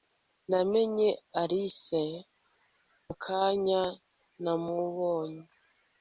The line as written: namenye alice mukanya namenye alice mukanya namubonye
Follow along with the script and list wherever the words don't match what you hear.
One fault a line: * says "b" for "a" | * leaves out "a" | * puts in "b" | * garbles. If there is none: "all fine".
* leaves out "namenye alice mukanya"